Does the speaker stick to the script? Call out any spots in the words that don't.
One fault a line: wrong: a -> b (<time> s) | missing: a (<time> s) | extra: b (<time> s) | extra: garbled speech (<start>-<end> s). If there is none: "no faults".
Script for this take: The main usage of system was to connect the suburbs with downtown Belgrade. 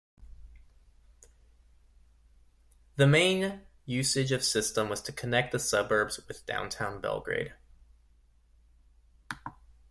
no faults